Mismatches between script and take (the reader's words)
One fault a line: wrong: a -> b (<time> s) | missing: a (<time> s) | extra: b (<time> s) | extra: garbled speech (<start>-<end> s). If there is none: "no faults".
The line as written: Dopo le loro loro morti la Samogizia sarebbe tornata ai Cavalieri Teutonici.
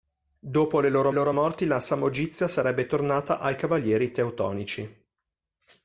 no faults